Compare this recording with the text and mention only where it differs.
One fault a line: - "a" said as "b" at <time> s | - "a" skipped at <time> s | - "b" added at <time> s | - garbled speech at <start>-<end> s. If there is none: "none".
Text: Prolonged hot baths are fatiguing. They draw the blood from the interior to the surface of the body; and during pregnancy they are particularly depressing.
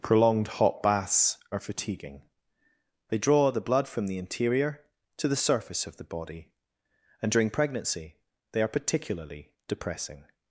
none